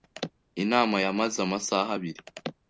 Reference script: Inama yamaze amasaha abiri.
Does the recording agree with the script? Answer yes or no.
yes